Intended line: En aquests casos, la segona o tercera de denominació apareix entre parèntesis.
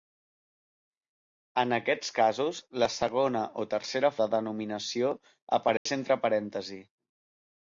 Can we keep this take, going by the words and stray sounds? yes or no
no